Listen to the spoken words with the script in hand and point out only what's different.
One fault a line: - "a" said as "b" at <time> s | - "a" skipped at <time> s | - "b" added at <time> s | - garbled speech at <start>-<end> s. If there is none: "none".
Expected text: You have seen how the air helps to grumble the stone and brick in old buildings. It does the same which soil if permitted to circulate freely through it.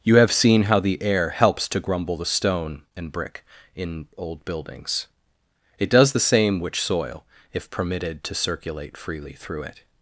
none